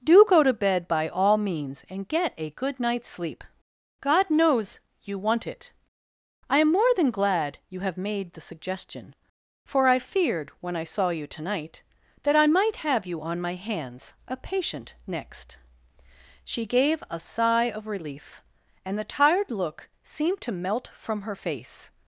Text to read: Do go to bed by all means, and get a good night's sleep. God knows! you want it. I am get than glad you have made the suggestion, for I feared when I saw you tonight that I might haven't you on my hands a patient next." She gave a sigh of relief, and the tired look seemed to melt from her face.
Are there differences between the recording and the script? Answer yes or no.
yes